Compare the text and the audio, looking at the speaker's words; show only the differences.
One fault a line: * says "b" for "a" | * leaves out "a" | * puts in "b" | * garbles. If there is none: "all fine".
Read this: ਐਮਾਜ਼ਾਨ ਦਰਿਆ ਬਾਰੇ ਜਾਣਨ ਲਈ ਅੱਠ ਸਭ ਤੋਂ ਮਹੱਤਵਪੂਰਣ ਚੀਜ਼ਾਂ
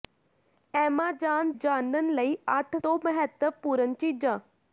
* leaves out "ਦਰਿਆ ਬਾਰੇ"
* leaves out "ਸਭ"